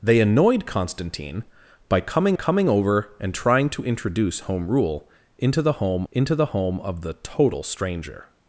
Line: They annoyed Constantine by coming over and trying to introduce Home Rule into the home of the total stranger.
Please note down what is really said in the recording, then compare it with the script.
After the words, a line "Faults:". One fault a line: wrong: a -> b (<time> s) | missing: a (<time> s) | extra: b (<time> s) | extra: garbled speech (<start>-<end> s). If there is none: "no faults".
They annoyed Constantine by coming coming over and trying to introduce Home Rule into the home into the home of the total stranger.
Faults:
extra: coming (2.3 s)
extra: into the home (6.1 s)